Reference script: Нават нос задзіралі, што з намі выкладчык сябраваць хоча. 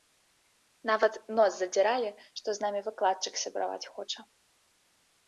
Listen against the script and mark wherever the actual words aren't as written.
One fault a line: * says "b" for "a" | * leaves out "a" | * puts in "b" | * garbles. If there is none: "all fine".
all fine